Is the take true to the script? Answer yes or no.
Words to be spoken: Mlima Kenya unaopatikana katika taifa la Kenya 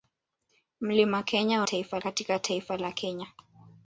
no